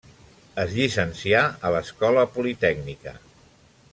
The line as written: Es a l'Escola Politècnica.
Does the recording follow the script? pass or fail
fail